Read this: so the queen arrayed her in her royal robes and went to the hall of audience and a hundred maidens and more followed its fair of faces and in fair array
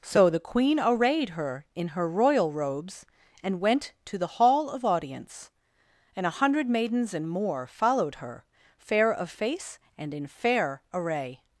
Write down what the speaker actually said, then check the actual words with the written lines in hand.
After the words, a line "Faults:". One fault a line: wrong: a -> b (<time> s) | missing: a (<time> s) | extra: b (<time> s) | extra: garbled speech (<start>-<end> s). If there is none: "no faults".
so the queen arrayed her in her royal robes and went to the hall of audience and a hundred maidens and more followed her fair of face and in fair array
Faults:
wrong: its -> her (8.2 s)
wrong: faces -> face (9.3 s)